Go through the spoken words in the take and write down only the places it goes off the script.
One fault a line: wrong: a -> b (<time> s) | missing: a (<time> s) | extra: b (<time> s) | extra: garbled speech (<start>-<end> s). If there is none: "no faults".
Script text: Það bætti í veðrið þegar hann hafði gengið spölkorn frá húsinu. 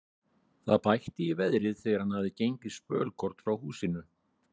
no faults